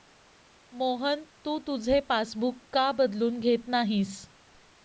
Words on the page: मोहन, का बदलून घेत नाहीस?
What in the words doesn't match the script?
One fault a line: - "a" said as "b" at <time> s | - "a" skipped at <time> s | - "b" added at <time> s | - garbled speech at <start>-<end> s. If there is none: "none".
- "तू तुझे पासबुक" added at 1.4 s